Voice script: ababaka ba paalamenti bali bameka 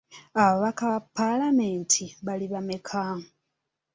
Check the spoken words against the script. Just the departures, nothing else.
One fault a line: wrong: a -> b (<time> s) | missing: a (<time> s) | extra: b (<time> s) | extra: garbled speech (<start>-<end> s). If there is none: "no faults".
no faults